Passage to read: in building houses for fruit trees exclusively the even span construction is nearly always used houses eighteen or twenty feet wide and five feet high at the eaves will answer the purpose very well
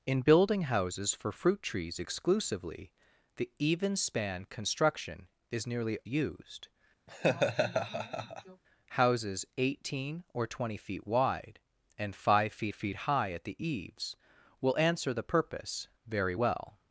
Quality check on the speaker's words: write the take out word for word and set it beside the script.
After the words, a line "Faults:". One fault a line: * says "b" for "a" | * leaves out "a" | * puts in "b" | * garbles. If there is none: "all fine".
in building houses for fruit trees exclusively the even span construction is nearly used houses eighteen or twenty feet wide and five feet feet high at the eaves will answer the purpose very well
Faults:
* leaves out "always"
* puts in "feet"